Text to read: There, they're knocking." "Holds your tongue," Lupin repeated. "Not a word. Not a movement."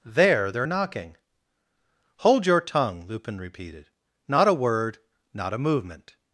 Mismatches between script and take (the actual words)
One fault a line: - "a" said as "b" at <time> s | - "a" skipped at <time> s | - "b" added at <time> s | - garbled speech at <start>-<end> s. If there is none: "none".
- "Holds" said as "Hold" at 2.2 s